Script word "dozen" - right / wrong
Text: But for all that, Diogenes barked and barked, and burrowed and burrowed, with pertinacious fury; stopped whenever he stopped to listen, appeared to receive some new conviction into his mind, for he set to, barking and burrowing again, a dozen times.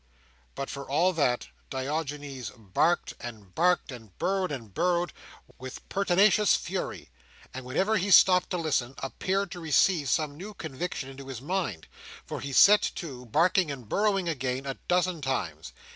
right